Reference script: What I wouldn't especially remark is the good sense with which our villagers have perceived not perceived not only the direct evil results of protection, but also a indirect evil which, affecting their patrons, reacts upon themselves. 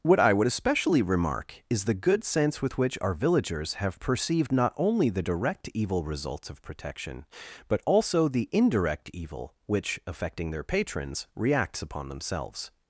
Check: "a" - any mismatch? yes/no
yes